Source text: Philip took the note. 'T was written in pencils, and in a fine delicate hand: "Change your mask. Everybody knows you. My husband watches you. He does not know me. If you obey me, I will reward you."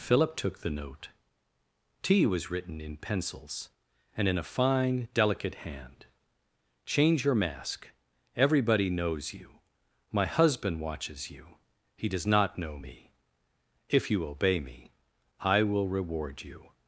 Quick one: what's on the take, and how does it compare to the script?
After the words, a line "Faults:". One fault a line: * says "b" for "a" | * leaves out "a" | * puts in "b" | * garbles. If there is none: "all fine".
Philip took the note. 'T was written in pencils, and in a fine delicate hand: "Change your mask. Everybody knows you. My husband watches you. He does not know me. If you obey me, I will reward you."
Faults:
all fine